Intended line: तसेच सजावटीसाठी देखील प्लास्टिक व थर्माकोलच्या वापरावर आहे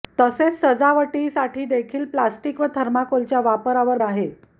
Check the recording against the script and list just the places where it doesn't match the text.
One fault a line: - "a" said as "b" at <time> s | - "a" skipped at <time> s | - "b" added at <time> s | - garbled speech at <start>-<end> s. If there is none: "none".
none